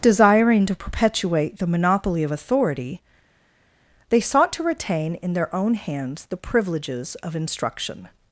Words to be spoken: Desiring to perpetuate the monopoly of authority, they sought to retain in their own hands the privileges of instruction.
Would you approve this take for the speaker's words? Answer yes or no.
yes